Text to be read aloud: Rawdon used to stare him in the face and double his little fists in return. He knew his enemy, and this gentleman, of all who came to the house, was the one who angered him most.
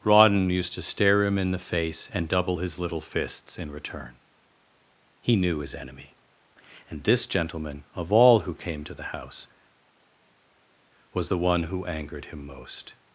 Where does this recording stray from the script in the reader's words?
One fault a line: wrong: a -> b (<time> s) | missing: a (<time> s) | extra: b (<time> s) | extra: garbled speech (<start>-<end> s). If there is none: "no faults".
no faults